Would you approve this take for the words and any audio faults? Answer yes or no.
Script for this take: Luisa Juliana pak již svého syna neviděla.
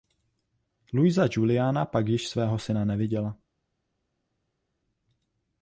yes